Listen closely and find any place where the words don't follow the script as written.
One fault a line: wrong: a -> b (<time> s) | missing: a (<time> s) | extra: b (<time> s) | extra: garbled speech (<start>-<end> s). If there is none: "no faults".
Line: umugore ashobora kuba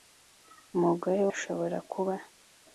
no faults